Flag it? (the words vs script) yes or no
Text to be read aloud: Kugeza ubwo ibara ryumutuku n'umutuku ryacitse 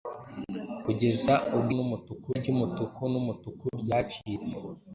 yes